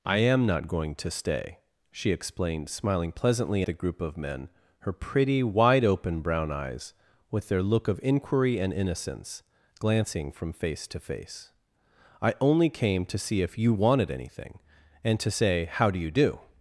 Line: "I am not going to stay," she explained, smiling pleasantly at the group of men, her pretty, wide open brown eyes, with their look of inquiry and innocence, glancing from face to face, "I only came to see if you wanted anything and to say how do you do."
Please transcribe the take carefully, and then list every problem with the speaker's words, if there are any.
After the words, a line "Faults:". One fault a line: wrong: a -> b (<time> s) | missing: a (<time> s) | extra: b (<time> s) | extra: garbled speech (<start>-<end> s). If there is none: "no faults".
"I am not going to stay," she explained, smiling pleasantly the group of men, her pretty, wide open brown eyes, with their look of inquiry and innocence, glancing from face to face, "I only came to see if you wanted anything and to say how do you do."
Faults:
missing: at (3.6 s)